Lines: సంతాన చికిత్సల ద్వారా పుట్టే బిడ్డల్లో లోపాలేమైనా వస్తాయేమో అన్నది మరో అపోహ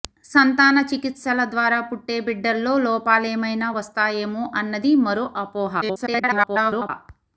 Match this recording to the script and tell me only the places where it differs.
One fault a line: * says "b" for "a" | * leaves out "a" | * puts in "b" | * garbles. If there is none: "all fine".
* garbles